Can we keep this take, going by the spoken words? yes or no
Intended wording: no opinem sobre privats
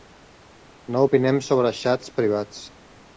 no